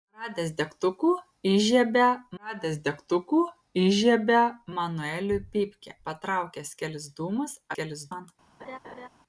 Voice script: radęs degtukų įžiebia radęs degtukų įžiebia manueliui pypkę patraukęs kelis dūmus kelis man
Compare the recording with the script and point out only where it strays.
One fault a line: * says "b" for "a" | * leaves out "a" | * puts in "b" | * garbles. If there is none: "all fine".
all fine